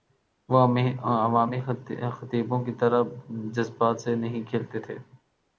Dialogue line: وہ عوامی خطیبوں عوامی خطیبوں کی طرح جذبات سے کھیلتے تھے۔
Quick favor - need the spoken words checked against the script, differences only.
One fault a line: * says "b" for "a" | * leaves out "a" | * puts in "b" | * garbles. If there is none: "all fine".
* leaves out "عوامی خطیبوں"
* puts in "نہیں"